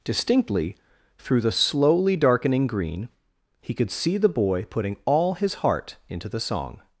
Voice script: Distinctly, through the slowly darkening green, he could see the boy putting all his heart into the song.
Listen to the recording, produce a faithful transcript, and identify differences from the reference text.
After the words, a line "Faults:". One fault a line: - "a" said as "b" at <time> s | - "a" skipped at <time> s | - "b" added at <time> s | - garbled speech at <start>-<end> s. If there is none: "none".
Distinctly, through the slowly darkening green, he could see the boy putting all his heart into the song.
Faults:
none